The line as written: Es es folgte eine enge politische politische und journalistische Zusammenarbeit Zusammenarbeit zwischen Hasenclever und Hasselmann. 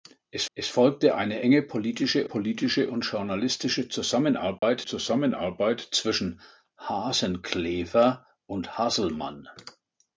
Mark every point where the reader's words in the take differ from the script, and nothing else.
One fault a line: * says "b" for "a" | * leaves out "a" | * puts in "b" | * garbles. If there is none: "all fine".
all fine